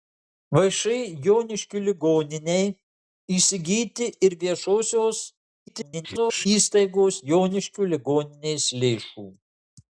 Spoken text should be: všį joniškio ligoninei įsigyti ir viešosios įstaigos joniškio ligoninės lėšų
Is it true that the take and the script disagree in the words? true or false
true